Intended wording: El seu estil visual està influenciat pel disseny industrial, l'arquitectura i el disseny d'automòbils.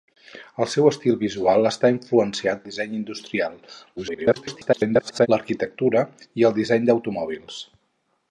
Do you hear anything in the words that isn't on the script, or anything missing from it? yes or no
yes